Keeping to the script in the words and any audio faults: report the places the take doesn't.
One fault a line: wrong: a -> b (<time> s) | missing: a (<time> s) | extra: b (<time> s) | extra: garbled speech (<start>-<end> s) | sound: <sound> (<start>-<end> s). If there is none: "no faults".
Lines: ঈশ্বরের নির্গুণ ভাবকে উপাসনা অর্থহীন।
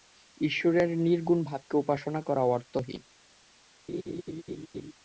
extra: করা (2.2 s)
sound: laugh (3.9-4.9 s)